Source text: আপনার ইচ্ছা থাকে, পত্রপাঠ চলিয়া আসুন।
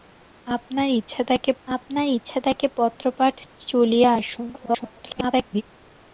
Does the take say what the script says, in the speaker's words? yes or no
no